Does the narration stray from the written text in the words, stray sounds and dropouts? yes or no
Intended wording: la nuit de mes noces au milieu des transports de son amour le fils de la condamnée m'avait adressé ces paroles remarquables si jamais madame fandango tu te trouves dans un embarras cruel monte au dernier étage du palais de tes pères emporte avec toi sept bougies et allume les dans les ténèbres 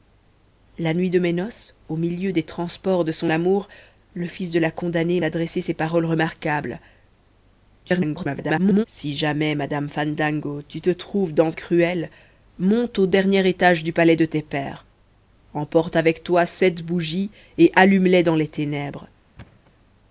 yes